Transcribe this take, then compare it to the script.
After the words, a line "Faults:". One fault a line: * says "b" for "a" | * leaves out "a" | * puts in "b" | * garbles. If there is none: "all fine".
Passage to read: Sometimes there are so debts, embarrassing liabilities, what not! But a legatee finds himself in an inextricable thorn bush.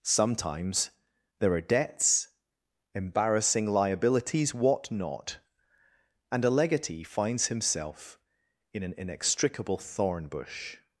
Sometimes there are debts, embarrassing liabilities, what not! And a legatee finds himself in an inextricable thorn bush.
Faults:
* leaves out "so"
* says "And" for "But"